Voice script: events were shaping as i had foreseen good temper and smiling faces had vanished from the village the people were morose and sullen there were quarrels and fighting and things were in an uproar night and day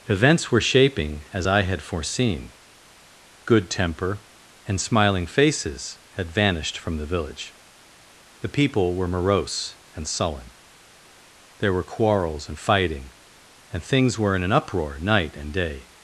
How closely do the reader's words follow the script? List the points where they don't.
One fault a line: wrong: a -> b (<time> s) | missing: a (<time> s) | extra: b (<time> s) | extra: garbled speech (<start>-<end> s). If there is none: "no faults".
no faults